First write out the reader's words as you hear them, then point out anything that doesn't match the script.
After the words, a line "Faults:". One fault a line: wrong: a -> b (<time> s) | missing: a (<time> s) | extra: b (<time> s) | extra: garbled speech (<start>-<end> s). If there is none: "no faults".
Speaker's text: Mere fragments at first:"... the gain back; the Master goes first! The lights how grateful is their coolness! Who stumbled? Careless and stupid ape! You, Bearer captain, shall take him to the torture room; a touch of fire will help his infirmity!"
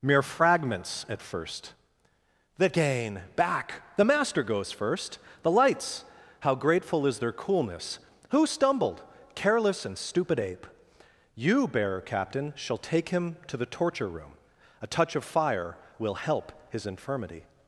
Mere fragments at first:"... the gain back; the Master goes first! The lights how grateful is their coolness! Who stumbled? Careless and stupid ape! You, Bearer captain, shall take him to the torture room; a touch of fire will help his infirmity!"
Faults:
no faults